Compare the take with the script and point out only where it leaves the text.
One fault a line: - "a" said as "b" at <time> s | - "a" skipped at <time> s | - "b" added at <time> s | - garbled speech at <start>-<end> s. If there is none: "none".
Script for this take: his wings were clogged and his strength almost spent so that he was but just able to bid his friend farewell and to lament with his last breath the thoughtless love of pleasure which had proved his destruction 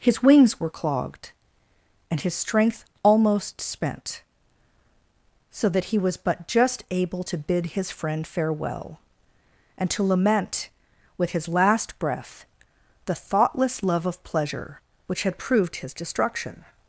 none